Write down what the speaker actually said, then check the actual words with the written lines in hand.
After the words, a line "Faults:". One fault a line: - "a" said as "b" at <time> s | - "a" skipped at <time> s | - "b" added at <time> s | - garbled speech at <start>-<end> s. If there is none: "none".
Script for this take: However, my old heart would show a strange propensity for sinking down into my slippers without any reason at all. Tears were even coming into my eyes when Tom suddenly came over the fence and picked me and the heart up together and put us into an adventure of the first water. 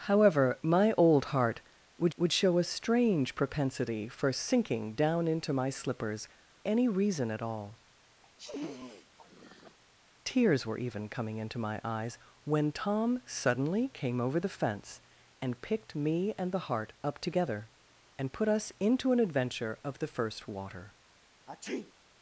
However, my old heart would would show a strange propensity for sinking down into my slippers any reason at all. Tears were even coming into my eyes when Tom suddenly came over the fence and picked me and the heart up together and put us into an adventure of the first water.
Faults:
- "would" added at 2.2 s
- "without" skipped at 6.3 s